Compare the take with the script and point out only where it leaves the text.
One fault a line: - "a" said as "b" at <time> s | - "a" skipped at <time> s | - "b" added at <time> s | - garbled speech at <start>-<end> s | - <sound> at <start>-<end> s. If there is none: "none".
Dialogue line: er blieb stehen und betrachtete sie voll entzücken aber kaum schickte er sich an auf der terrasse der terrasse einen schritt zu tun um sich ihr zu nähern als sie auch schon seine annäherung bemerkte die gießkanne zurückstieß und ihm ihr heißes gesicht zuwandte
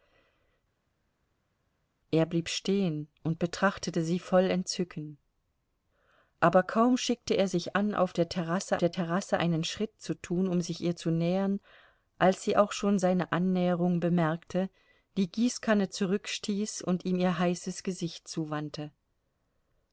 none